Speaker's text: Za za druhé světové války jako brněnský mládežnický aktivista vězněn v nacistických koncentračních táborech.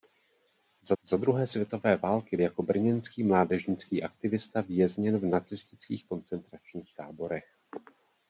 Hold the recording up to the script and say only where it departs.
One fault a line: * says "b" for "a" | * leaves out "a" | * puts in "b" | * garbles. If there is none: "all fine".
all fine